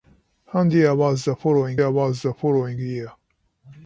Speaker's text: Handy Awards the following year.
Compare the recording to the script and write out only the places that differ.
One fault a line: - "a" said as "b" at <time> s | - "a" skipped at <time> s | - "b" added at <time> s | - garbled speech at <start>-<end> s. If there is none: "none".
- "Awards the following" added at 1.8 s